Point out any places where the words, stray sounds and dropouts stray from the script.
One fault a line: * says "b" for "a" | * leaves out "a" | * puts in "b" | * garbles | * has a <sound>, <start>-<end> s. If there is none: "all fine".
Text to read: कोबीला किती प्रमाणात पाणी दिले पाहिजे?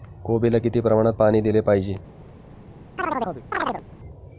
* has a chirp, 3.0-3.8 s